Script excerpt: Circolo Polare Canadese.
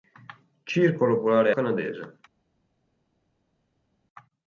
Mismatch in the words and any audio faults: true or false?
false